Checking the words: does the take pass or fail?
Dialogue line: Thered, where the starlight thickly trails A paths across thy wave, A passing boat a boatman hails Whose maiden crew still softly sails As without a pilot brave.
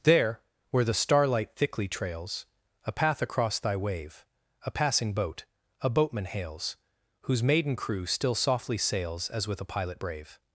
fail